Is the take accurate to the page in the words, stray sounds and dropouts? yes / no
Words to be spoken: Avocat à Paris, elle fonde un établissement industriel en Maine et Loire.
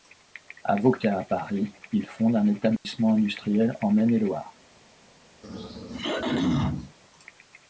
no